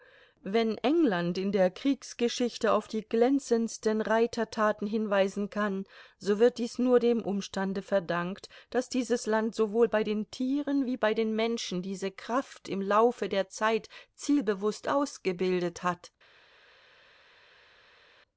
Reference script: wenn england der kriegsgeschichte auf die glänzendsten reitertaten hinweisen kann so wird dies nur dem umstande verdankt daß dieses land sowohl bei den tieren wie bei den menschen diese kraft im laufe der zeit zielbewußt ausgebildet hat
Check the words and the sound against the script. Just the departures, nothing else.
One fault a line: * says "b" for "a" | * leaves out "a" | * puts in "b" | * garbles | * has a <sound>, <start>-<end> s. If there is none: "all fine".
* puts in "in"